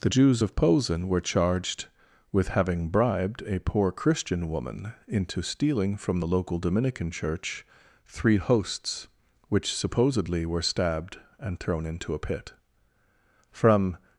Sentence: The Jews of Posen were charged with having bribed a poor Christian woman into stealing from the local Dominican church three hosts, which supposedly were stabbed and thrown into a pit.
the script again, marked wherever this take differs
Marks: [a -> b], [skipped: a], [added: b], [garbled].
The Jews of Posen were charged with having bribed a poor Christian woman into stealing from the local Dominican church three hosts, which supposedly were stabbed and thrown into a pit. [added: From]